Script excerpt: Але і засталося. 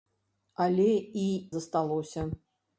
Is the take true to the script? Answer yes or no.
yes